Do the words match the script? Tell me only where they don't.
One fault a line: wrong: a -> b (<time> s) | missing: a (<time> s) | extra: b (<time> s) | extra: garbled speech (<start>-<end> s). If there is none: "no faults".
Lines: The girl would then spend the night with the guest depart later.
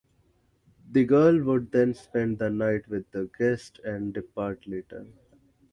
extra: and (3.8 s)